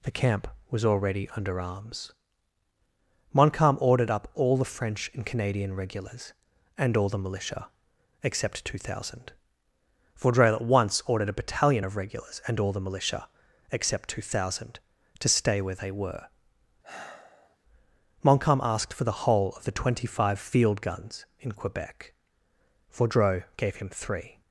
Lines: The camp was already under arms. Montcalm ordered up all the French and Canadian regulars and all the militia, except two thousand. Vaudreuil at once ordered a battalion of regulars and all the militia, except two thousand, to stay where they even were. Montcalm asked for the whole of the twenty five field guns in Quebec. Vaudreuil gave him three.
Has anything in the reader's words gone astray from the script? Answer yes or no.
yes